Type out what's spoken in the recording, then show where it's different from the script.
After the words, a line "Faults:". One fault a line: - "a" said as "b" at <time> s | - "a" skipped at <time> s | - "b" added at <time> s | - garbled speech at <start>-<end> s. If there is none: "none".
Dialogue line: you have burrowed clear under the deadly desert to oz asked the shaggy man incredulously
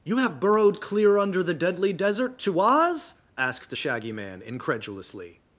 you have burrowed clear under the deadly desert to oz asked the shaggy man incredulously
Faults:
none